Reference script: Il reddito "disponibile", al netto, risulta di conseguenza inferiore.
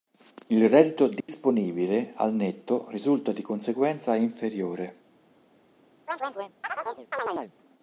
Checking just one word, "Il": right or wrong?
right